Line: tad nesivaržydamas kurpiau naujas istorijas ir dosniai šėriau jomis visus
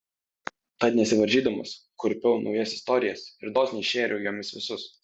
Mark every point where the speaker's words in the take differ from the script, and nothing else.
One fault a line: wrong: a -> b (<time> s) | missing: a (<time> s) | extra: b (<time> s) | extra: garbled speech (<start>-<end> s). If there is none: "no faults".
no faults